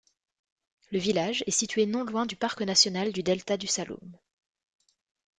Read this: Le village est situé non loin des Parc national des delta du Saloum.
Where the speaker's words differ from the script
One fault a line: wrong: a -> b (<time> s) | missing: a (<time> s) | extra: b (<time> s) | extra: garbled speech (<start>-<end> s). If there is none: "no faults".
wrong: des -> du (2.2 s)
wrong: des -> du (3.1 s)